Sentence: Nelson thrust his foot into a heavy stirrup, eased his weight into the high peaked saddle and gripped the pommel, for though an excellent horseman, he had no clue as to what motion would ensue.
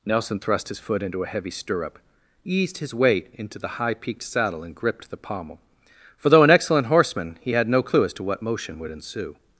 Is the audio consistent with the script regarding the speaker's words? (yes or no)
yes